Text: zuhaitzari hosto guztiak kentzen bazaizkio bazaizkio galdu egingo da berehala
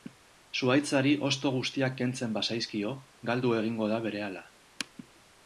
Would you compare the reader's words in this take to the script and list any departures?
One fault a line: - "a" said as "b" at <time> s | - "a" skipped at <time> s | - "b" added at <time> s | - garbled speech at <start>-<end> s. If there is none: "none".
- "bazaizkio" skipped at 3.0 s